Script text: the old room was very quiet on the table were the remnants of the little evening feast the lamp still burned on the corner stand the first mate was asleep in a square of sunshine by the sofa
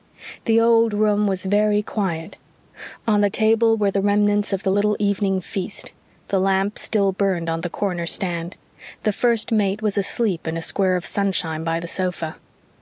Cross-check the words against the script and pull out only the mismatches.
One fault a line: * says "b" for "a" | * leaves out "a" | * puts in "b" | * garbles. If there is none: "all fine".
all fine